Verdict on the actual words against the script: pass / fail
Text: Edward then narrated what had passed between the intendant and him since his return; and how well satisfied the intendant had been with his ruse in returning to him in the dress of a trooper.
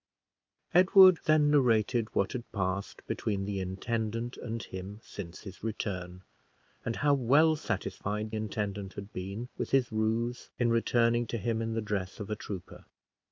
fail